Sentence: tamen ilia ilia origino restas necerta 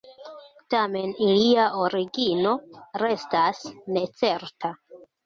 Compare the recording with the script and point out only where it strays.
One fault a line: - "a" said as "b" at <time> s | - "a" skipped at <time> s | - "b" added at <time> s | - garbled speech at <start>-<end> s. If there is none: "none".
- "ilia" skipped at 1.6 s